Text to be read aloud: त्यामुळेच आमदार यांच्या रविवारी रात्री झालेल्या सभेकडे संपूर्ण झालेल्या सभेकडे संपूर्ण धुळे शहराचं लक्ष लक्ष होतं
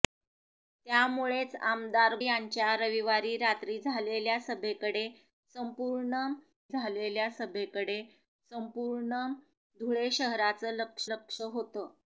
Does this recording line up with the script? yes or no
yes